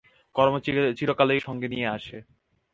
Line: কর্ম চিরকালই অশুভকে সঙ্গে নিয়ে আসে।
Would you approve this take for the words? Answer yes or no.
no